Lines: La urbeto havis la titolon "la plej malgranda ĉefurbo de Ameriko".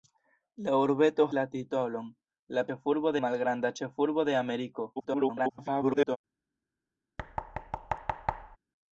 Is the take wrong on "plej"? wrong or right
wrong